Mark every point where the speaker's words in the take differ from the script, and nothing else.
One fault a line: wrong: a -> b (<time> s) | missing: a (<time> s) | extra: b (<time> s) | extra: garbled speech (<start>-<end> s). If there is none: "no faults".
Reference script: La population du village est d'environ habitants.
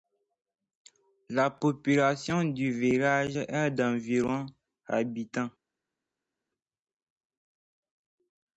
no faults